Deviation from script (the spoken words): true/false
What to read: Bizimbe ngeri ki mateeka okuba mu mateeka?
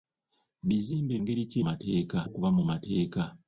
false